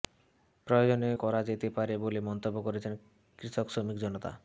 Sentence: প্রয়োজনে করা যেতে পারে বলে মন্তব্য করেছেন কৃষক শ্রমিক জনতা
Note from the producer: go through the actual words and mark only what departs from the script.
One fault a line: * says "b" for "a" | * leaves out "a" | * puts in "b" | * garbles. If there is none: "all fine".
all fine